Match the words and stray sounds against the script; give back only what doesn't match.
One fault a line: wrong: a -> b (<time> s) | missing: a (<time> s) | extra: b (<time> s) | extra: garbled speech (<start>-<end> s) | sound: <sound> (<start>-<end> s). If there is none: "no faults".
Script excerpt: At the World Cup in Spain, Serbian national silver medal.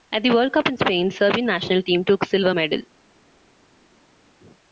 extra: team took (1.8 s)